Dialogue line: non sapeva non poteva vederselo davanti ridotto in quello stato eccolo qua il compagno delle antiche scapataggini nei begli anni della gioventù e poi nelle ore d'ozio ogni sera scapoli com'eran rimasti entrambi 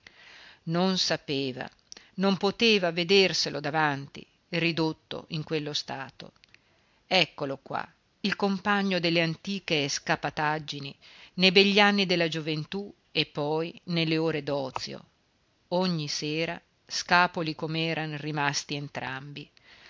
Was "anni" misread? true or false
false